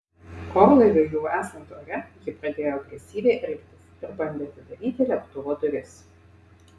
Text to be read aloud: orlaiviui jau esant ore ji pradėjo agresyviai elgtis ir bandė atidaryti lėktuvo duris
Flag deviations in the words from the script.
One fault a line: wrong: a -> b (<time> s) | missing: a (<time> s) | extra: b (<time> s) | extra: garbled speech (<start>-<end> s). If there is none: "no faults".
no faults